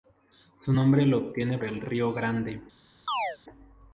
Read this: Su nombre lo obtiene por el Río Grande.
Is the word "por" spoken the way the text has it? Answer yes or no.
no